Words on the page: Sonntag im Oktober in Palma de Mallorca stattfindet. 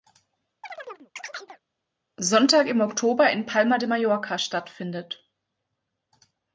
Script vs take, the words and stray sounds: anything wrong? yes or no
yes